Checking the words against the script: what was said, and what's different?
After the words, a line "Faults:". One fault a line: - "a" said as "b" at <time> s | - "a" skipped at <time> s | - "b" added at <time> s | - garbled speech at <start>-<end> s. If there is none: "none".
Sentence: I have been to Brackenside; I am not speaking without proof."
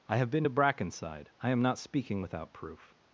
I have been to Brackenside; I am not speaking without proof."
Faults:
none